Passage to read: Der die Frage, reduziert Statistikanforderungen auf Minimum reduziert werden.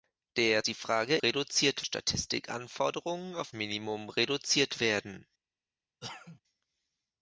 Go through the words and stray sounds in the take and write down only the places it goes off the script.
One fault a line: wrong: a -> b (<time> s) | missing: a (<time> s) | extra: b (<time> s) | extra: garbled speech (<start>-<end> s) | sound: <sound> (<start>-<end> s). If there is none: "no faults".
sound: cough (6.0-6.4 s)